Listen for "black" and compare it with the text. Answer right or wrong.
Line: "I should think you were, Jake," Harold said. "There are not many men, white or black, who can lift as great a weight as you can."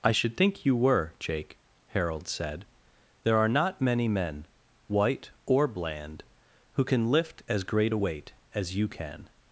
wrong